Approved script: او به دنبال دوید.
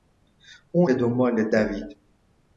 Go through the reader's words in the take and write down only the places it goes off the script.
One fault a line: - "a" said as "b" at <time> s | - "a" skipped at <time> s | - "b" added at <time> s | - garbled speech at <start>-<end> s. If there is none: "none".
none